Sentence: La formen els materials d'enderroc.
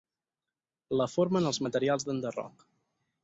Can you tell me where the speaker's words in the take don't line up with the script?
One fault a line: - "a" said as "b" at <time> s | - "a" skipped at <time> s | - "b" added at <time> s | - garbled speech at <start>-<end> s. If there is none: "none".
none